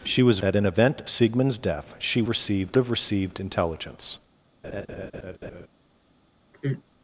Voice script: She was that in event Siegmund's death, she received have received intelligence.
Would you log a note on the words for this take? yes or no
no